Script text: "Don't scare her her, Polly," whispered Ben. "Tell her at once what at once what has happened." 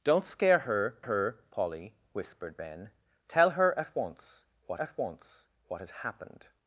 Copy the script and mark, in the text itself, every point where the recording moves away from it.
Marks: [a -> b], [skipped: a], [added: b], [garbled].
"Don't scare her her, Polly," whispered Ben. "Tell her at once what at once what has happened."